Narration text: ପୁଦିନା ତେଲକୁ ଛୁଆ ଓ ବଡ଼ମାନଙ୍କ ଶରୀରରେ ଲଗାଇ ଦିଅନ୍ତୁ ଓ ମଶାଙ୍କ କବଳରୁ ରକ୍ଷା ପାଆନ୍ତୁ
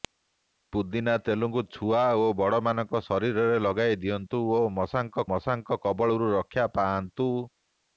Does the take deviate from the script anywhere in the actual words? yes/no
yes